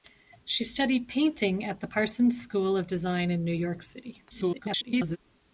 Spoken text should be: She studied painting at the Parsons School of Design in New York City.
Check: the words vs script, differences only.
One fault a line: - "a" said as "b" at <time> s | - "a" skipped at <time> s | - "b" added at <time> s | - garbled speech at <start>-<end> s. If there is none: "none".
- garbled speech at 4.3-5.2 s